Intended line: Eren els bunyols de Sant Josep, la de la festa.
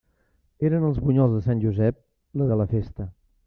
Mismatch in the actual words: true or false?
false